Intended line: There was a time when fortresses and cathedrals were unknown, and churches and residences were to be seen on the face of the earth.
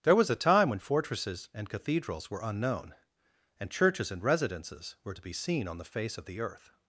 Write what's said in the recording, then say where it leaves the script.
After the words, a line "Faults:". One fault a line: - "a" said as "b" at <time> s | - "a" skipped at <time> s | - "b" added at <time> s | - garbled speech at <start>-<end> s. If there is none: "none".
There was a time when fortresses and cathedrals were unknown, and churches and residences were to be seen on the face of the earth.
Faults:
none